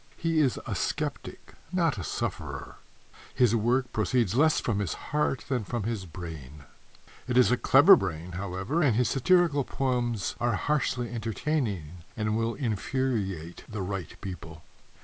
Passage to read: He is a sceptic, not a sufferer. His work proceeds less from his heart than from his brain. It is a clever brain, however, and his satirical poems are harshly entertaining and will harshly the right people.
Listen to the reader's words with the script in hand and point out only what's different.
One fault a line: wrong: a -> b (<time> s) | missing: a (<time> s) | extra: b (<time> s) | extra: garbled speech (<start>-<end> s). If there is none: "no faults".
wrong: harshly -> infuriate (12.6 s)